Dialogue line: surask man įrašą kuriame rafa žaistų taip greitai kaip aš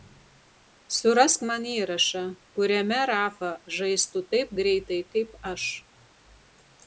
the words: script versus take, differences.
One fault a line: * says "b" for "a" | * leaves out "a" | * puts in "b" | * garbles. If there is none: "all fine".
all fine